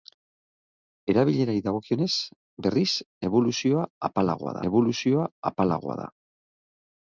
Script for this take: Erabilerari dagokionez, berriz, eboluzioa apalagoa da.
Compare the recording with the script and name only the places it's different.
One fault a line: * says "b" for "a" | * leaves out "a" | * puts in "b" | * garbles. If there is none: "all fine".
* puts in "eboluzioa apalagoa"